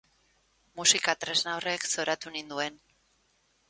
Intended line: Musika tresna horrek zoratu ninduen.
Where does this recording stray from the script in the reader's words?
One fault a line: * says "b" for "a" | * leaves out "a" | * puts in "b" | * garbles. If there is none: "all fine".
all fine